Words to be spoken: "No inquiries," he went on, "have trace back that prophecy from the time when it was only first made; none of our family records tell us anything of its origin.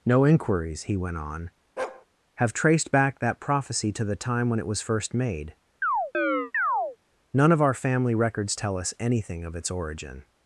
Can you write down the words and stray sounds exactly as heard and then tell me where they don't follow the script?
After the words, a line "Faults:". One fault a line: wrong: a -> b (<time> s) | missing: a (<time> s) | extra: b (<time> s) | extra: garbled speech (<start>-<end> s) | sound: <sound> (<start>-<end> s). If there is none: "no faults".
"No inquiries," he went on, "have traced back that prophecy to the time when it was first made; none of our family records tell us anything of its origin.
Faults:
sound: bark (1.8-2.1 s)
wrong: trace -> traced (2.5 s)
wrong: from -> to (3.9 s)
missing: only (4.8 s)
sound: chirp (5.8-7.0 s)